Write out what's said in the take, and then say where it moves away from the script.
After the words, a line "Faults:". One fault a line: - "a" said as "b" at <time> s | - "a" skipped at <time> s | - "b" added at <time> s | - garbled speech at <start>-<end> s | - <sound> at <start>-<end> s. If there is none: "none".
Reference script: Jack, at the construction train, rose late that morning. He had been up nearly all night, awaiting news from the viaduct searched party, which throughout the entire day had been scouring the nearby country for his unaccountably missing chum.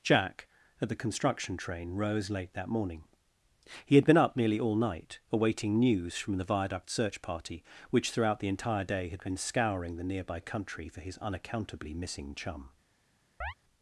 Jack, at the construction train, rose late that morning. He had been up nearly all night, awaiting news from the viaduct search party, which throughout the entire day had been scouring the nearby country for his unaccountably missing chum.
Faults:
- "searched" said as "search" at 6.9 s
- chirp at 13.4-13.5 s